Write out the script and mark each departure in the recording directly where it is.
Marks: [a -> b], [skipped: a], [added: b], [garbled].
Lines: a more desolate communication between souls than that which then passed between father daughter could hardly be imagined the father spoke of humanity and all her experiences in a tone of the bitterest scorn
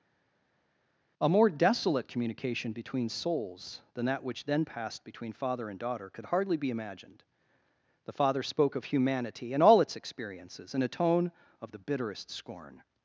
a more desolate communication between souls than that which then passed between father [added: and] daughter could hardly be imagined the father spoke of humanity and all [her -> its] experiences in a tone of the bitterest scorn